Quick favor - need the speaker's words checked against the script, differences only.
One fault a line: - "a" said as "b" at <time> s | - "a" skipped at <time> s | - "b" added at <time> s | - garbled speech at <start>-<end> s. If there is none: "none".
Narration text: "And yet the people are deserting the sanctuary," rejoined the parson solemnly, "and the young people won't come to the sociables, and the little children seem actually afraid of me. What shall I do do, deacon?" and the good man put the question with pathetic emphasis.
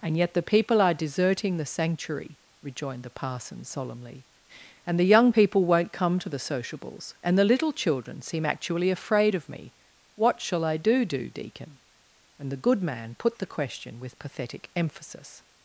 none